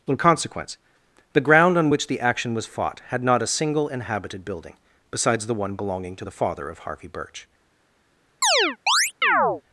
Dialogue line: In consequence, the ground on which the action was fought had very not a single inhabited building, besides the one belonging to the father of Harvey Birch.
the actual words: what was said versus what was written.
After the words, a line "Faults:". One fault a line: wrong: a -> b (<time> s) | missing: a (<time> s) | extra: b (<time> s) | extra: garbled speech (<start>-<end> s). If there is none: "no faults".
In consequence, the ground on which the action was fought had not a single inhabited building, besides the one belonging to the father of Harvey Birch.
Faults:
missing: very (3.2 s)